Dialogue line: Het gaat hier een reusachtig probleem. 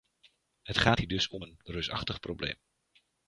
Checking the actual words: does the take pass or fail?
fail